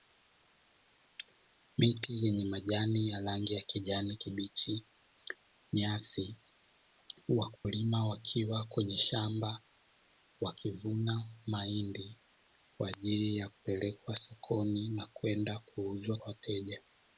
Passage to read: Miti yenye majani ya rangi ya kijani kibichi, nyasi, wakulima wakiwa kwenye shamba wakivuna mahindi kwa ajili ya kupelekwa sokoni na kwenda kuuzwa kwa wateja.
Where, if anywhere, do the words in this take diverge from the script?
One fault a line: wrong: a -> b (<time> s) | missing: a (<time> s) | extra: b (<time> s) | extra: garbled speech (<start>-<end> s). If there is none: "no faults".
missing: kwa (16.2 s)